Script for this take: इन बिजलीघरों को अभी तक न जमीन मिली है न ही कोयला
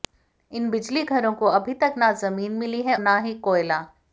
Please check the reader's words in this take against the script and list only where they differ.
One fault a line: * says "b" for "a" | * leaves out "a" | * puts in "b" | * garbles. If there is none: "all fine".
all fine